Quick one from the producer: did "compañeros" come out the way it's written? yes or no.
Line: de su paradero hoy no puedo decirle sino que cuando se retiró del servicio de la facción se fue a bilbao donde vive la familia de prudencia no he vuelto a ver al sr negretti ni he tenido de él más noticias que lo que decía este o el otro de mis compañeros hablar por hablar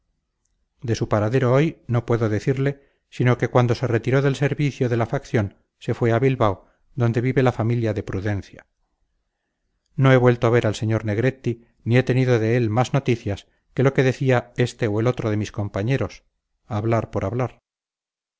yes